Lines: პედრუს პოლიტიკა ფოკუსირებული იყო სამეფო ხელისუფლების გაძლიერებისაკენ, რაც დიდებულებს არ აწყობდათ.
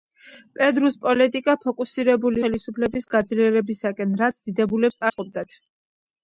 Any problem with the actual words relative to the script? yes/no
yes